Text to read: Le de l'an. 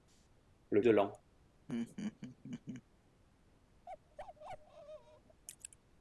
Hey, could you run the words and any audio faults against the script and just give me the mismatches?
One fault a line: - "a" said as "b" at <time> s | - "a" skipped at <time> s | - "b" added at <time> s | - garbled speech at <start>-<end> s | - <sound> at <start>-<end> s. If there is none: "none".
- laugh at 1.7-2.8 s
- bark at 3.9-5.4 s